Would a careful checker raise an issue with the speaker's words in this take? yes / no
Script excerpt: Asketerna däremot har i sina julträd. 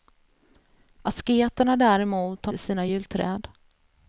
no